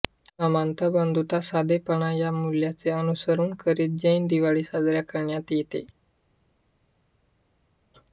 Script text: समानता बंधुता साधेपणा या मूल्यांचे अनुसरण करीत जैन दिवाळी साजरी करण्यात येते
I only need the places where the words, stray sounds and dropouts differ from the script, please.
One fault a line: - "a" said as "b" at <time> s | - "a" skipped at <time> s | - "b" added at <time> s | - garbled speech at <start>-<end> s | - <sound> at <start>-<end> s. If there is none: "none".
none